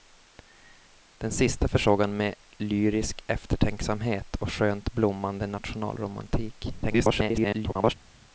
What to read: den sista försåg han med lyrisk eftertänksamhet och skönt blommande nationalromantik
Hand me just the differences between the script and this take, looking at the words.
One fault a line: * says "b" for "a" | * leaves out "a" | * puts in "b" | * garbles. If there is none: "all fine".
* garbles